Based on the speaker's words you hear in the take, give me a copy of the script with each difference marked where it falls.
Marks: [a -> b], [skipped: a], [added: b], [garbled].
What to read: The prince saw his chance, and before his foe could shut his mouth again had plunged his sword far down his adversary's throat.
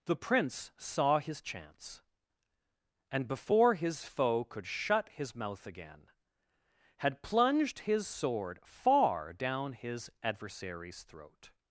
The prince saw his chance, and before his foe could shut his mouth again had plunged his sword far down his adversary's throat.